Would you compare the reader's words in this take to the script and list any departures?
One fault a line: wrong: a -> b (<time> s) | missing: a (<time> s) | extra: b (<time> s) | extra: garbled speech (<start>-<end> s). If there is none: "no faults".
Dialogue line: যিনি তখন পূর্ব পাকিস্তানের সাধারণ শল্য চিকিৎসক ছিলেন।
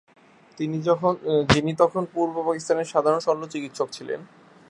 no faults